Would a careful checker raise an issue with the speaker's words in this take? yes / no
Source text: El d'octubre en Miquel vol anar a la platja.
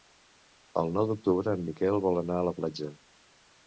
yes